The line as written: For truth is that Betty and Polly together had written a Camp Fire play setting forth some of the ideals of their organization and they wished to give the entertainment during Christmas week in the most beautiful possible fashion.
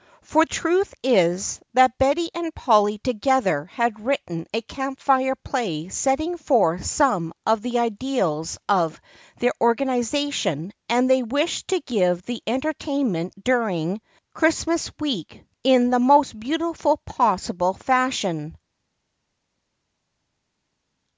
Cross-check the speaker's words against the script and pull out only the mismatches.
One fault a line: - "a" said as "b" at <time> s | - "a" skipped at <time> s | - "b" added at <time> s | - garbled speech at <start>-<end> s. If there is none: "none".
none